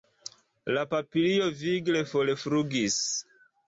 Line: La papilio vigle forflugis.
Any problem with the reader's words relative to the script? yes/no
no